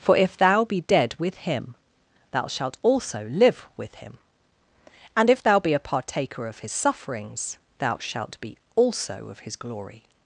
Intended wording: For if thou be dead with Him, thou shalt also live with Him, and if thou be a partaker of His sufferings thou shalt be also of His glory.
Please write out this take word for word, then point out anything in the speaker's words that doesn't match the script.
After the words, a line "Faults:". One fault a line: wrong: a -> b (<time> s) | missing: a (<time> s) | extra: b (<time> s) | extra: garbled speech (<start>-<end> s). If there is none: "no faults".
For if thou be dead with Him, thou shalt also live with Him, and if thou be a partaker of His sufferings thou shalt be also of His glory.
Faults:
no faults